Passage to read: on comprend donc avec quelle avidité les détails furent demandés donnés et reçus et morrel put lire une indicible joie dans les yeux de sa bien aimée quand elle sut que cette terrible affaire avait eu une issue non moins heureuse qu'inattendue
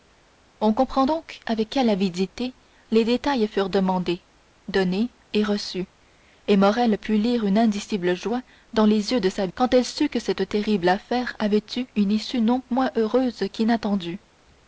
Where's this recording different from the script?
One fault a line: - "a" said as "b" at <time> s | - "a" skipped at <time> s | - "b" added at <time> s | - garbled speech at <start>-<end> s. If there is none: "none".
- "bien aimée" skipped at 9.5 s